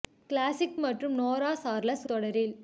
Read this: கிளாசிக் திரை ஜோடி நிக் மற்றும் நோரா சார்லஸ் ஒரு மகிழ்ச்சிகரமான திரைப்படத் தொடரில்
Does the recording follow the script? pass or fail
fail